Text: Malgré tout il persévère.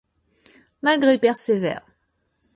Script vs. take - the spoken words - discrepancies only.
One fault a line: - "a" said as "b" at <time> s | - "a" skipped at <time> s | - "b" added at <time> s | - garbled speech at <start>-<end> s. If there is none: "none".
- "tout il" skipped at 1.2 s